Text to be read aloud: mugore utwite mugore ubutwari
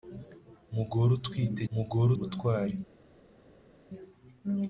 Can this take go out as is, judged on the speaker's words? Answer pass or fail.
pass